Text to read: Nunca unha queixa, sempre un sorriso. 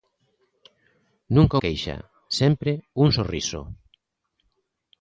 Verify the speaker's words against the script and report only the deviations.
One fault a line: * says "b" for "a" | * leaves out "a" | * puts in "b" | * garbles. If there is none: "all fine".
* leaves out "unha"